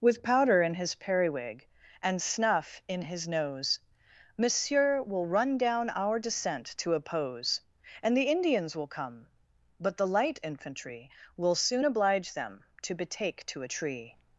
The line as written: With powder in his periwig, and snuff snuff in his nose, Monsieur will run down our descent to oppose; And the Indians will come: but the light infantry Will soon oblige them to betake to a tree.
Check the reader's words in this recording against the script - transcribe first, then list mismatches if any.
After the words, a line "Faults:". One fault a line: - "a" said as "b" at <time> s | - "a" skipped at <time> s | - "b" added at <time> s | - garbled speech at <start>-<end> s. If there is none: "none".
With powder in his periwig, and snuff in his nose, Monsieur will run down our descent to oppose; And the Indians will come: but the light infantry Will soon oblige them to betake to a tree.
Faults:
- "snuff" skipped at 2.8 s